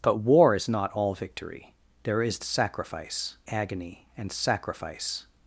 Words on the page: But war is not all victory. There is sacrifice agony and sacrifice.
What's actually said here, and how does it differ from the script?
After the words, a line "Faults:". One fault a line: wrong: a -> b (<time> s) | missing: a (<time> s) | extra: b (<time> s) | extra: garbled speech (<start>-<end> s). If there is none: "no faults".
But war is not all victory. There is sacrifice agony and sacrifice.
Faults:
no faults